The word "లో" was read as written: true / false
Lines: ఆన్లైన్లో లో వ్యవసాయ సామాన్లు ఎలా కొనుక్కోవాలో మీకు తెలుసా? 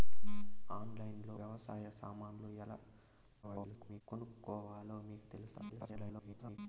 false